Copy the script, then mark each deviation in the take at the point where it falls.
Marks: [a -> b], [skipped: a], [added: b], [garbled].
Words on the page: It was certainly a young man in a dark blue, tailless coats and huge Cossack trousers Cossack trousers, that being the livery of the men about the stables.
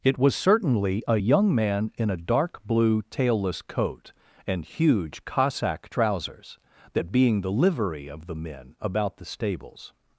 It was certainly a young man in a dark blue, tailless [coats -> coat] and huge Cossack trousers [skipped: Cossack trousers,] that being the livery of the men about the stables.